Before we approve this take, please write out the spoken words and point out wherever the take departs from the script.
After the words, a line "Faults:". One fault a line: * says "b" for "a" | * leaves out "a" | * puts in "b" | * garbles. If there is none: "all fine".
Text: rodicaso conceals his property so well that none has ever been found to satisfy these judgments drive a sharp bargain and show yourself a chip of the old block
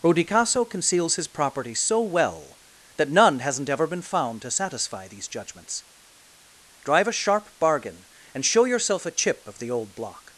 rodicaso conceals his property so well that none hasn't ever been found to satisfy these judgments drive a sharp bargain and show yourself a chip of the old block
Faults:
* says "hasn't" for "has"